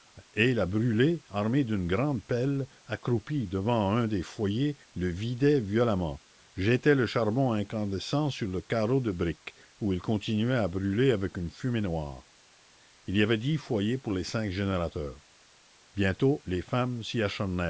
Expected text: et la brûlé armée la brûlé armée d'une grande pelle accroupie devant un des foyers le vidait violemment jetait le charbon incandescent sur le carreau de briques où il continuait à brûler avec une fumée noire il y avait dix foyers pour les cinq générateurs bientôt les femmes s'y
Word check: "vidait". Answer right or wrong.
right